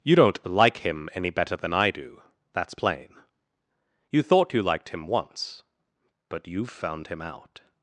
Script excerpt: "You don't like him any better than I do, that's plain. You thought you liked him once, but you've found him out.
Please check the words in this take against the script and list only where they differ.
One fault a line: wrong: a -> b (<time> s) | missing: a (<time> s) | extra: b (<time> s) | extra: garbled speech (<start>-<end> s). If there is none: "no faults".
no faults